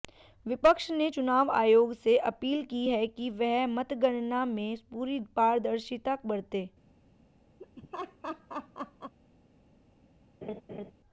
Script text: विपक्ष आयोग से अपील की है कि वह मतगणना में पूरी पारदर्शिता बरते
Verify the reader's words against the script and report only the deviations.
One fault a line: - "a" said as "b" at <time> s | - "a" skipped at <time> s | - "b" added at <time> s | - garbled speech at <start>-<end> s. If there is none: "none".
- "ने चुनाव" added at 0.9 s